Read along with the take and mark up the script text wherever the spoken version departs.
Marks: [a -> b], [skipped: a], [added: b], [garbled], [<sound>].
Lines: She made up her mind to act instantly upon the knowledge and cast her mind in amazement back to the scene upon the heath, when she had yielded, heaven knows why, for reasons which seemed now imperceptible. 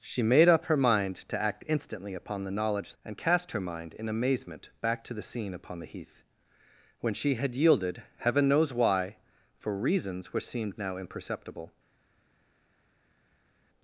She made up her mind to act instantly upon the knowledge and cast her mind in amazement back to the scene upon the heath, when she had yielded, heaven knows why, for reasons which seemed now imperceptible.